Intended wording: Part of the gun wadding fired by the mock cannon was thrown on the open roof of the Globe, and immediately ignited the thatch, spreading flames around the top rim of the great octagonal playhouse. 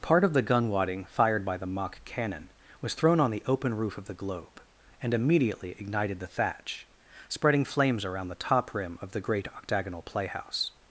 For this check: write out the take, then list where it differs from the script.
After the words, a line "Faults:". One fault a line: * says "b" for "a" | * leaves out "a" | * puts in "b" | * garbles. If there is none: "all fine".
Part of the gun wadding fired by the mock cannon was thrown on the open roof of the Globe, and immediately ignited the thatch, spreading flames around the top rim of the great octagonal playhouse.
Faults:
all fine